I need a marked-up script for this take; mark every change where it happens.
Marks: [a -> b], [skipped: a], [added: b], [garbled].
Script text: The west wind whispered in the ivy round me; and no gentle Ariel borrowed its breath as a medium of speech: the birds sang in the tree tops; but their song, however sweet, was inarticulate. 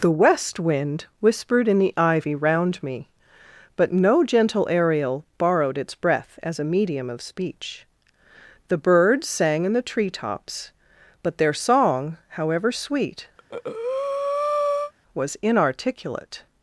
The west wind whispered in the ivy round me; [and -> but] no gentle Ariel borrowed its breath as a medium of speech: the birds sang in the tree tops; but their song, however sweet, was inarticulate.